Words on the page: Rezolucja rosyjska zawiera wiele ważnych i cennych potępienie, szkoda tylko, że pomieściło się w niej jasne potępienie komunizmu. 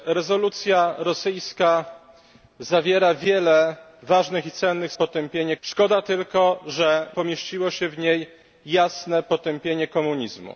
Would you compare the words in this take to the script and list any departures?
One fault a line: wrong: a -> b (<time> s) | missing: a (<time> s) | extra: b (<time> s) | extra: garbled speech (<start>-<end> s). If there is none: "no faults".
no faults